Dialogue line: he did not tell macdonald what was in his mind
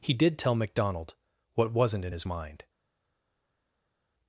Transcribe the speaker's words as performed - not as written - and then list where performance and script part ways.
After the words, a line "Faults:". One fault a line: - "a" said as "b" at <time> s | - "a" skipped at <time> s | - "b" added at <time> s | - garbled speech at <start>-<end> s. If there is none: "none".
he did tell macdonald what wasn't in his mind
Faults:
- "not" skipped at 0.4 s
- "was" said as "wasn't" at 1.7 s